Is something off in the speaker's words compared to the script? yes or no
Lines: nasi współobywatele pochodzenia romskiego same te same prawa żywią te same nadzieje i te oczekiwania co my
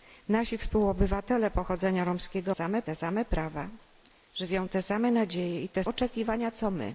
no